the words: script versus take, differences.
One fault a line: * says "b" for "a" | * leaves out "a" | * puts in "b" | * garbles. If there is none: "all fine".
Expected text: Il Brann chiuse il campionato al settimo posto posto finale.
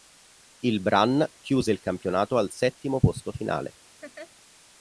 * leaves out "posto"